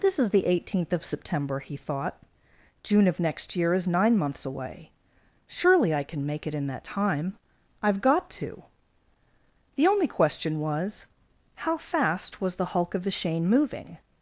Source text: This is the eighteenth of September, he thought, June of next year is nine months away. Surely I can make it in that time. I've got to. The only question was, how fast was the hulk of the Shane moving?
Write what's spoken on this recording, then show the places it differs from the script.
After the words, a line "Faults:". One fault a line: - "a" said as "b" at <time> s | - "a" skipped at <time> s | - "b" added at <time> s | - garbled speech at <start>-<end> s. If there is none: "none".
This is the eighteenth of September, he thought, June of next year is nine months away. Surely I can make it in that time. I've got to. The only question was, how fast was the hulk of the Shane moving?
Faults:
none